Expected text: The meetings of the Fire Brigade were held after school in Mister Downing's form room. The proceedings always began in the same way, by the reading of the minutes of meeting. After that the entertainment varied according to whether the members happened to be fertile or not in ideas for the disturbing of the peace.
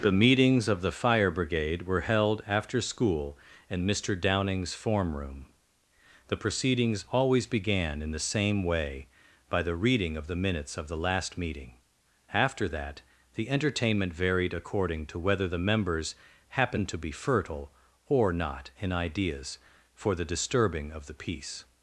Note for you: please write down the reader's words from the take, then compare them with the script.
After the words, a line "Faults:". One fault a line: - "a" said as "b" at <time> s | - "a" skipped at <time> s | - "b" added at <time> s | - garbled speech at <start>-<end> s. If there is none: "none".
The meetings of the Fire Brigade were held after school in Mister Downing's form room. The proceedings always began in the same way, by the reading of the minutes of the last meeting. After that the entertainment varied according to whether the members happened to be fertile or not in ideas for the disturbing of the peace.
Faults:
- "the last" added at 10.9 s